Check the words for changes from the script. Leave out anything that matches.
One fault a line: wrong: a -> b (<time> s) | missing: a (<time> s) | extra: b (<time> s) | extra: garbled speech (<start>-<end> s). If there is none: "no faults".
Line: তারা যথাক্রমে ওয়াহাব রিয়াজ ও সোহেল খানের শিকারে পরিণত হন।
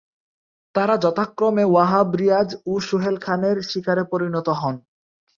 no faults